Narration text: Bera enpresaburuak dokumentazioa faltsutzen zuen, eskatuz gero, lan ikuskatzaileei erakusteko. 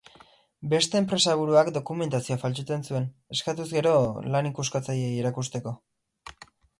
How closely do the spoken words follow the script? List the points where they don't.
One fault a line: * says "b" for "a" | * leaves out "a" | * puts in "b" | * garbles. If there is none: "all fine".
* says "Beste" for "Bera"